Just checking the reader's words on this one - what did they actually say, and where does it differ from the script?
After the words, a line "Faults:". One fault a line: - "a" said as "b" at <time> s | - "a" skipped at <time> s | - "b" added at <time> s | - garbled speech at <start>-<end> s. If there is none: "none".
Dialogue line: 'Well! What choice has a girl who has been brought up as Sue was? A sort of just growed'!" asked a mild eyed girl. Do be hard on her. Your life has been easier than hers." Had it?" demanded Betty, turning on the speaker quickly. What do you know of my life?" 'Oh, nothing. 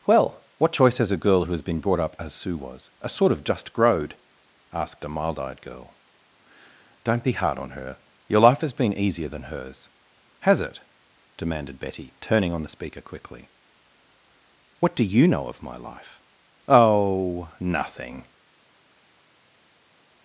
'Well! What choice has a girl who has been brought up as Sue was? A sort of just growed'!" asked a mild eyed girl. Don't be hard on her. Your life has been easier than hers." Has it?" demanded Betty, turning on the speaker quickly. What do you know of my life?" 'Oh, nothing.
Faults:
- "Do" said as "Don't" at 7.0 s
- "Had" said as "Has" at 10.4 s